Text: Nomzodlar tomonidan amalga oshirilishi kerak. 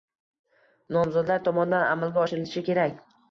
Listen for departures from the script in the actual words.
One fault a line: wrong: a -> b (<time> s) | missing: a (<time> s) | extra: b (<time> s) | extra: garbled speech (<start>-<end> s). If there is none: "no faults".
no faults